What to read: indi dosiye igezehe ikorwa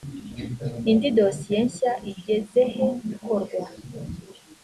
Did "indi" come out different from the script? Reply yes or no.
no